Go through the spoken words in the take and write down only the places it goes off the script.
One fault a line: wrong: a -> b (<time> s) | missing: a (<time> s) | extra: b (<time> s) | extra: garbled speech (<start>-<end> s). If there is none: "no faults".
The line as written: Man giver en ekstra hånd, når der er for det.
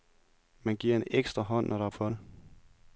no faults